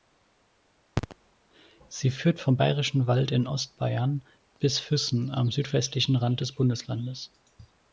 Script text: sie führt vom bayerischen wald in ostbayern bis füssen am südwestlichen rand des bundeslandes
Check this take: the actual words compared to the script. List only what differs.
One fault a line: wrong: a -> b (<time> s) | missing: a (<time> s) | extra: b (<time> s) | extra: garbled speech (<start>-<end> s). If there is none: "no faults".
no faults